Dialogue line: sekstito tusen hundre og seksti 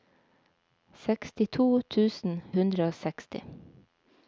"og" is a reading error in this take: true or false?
false